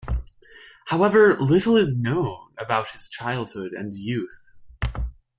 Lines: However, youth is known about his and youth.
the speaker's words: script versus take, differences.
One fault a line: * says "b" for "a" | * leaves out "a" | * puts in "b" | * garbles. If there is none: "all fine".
* says "little" for "youth"
* puts in "childhood"